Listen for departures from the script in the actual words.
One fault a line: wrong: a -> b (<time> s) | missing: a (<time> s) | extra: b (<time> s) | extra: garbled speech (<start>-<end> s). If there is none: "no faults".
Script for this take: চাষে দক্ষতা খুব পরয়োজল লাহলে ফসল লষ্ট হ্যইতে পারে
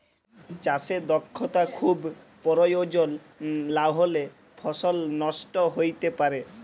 no faults